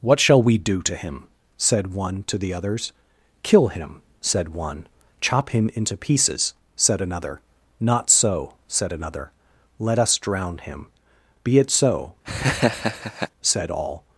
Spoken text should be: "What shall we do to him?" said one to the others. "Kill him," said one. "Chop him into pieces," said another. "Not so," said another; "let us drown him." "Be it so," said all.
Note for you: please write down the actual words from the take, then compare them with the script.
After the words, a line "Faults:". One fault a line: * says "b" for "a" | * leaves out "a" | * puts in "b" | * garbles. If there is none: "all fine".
"What shall we do to him?" said one to the others. "Kill him," said one. "Chop him into pieces," said another. "Not so," said another; "let us drown him." "Be it so," said all.
Faults:
all fine